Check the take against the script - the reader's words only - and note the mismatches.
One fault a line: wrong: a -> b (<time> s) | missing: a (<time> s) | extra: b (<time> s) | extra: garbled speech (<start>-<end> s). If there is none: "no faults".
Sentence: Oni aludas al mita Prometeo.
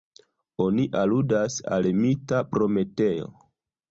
no faults